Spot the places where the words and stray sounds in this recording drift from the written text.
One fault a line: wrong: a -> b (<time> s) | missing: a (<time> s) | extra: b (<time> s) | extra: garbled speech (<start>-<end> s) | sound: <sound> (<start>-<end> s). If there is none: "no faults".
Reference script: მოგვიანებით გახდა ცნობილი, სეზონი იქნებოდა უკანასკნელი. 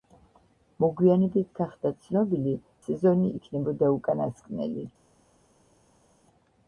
no faults